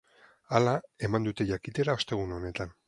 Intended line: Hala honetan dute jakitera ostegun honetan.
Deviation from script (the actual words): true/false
true